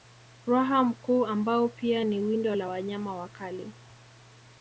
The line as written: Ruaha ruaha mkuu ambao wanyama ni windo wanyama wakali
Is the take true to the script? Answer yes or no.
no